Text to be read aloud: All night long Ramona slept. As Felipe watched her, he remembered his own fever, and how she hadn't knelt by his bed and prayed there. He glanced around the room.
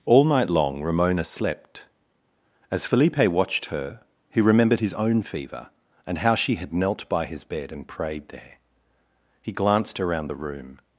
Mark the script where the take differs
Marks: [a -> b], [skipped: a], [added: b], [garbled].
All night long Ramona slept. As Felipe watched her, he remembered his own fever, and how she [hadn't -> had] knelt by his bed and prayed there. He glanced around the room.